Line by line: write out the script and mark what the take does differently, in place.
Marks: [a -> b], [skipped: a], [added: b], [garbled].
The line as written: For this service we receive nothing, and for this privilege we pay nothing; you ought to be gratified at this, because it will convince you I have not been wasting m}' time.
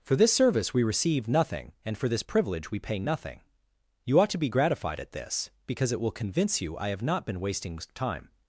For this service we receive nothing, and for this privilege we pay nothing; you ought to be gratified at this, because it will convince you I have not been wasting [skipped: m}'] time.